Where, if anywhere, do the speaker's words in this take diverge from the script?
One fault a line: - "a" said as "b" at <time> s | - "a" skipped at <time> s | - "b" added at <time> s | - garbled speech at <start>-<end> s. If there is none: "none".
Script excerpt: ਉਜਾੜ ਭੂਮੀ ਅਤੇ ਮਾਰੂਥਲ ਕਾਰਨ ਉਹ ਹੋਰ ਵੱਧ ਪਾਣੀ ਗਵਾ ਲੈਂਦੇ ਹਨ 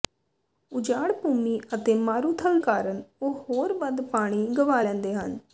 none